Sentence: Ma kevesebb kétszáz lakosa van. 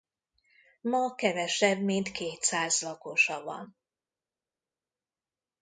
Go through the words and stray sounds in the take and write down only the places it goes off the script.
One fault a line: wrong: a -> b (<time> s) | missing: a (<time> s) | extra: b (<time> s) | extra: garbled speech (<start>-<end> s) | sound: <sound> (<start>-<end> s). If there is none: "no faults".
extra: mint (1.8 s)